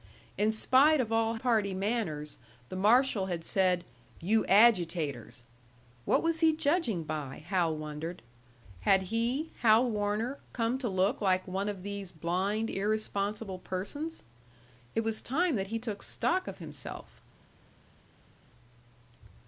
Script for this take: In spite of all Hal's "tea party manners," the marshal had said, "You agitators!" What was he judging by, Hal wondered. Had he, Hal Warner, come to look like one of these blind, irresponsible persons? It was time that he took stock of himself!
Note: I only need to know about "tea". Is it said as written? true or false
false